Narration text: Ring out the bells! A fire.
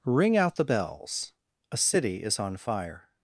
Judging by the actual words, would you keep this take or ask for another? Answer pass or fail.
fail